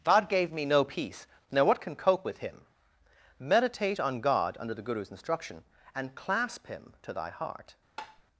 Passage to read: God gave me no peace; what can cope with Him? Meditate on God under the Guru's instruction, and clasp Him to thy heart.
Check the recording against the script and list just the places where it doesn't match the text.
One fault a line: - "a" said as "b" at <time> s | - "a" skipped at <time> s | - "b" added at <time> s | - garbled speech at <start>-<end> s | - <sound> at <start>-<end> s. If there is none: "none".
- "now" added at 1.5 s
- tap at 8.0-8.2 s